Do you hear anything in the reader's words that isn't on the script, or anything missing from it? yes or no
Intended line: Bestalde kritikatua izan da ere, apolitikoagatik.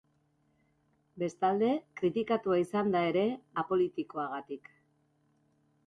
no